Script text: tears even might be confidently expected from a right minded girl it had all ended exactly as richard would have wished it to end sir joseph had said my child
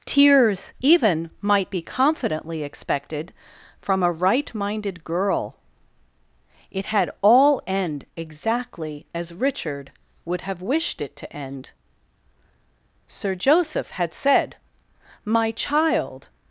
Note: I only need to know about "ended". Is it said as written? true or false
false